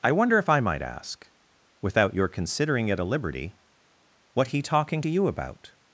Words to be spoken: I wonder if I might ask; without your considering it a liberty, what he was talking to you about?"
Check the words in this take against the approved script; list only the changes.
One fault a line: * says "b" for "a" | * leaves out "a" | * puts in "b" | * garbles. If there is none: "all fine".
* leaves out "was"